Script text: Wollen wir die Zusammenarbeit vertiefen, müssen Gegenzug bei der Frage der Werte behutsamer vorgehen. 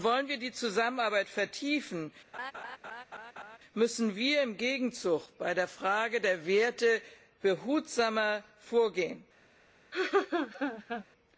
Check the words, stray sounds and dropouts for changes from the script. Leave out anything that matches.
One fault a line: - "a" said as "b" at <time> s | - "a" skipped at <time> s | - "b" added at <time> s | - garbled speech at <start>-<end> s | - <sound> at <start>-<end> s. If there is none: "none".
- laugh at 2.3-3.6 s
- "wir im" added at 4.2 s
- laugh at 9.9-11.0 s